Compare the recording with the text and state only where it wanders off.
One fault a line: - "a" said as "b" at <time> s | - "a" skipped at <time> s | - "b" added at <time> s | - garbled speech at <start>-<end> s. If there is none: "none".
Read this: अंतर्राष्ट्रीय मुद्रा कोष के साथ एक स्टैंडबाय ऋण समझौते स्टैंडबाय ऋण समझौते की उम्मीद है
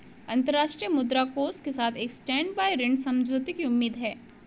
- "स्टैंडबाय ऋण समझौते" skipped at 3.5 s